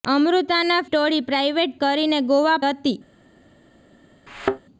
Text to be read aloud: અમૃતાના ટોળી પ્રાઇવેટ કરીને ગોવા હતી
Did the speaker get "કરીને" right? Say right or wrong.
right